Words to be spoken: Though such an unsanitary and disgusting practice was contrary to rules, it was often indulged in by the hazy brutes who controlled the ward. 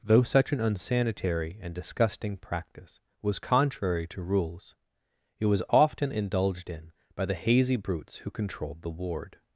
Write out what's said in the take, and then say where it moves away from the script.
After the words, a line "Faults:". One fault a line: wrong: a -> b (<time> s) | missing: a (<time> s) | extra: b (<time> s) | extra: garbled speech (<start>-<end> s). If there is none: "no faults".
Though such an unsanitary and disgusting practice was contrary to rules, it was often indulged in by the hazy brutes who controlled the ward.
Faults:
no faults